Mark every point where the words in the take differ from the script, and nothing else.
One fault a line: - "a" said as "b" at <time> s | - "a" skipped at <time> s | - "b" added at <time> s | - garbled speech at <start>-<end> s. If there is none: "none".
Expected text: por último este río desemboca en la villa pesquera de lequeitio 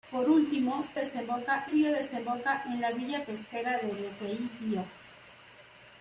- "este" said as "desemboca" at 0.9 s